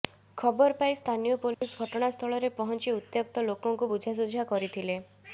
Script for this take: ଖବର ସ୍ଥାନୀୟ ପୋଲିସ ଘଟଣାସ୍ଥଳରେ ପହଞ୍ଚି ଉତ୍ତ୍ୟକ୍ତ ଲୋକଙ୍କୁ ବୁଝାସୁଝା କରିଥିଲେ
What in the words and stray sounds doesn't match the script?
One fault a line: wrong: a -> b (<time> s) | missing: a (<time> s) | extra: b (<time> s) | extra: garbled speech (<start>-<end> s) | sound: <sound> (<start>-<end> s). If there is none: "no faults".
extra: ପାଇ (0.8 s)
sound: dropout (1.5-1.6 s)